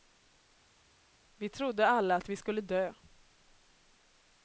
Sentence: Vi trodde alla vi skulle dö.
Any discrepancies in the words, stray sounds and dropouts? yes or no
yes